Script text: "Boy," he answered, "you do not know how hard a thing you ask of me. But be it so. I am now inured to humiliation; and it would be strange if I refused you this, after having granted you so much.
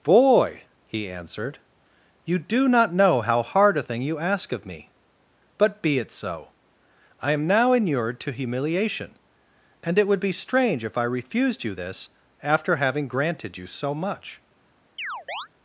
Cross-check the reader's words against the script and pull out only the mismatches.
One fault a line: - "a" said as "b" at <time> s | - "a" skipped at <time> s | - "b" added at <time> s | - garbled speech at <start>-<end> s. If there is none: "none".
none